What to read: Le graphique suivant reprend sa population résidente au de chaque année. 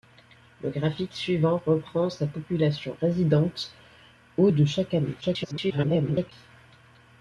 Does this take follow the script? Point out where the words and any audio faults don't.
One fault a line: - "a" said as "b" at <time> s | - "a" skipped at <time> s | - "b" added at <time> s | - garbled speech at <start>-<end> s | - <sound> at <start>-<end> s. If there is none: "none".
- garbled speech at 5.2-6.3 s